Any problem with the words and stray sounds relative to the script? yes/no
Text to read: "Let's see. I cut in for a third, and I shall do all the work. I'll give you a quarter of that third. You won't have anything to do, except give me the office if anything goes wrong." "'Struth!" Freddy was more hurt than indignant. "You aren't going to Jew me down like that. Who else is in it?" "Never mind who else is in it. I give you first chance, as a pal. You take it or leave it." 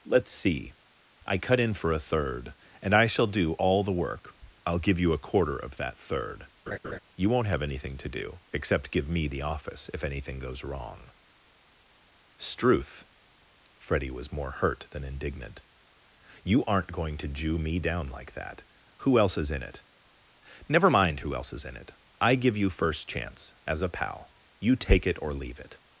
yes